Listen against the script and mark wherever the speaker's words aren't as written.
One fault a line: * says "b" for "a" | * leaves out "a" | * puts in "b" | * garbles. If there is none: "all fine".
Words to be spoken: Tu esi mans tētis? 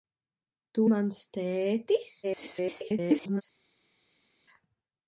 * leaves out "esi"
* garbles